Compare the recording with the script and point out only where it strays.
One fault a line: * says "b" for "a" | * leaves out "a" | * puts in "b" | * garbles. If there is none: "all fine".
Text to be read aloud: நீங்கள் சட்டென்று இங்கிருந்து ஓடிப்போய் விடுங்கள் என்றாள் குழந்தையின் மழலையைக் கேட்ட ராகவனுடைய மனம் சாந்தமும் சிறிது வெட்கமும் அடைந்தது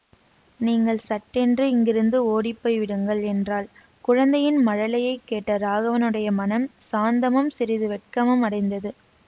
all fine